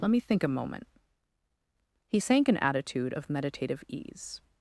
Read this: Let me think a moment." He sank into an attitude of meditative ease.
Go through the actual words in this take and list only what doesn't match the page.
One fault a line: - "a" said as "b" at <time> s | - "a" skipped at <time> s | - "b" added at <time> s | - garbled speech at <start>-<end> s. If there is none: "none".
- "into" skipped at 2.5 s